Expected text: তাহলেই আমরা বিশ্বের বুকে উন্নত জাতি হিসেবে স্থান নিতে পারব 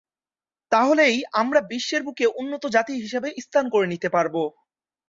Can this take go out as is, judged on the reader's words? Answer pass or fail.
fail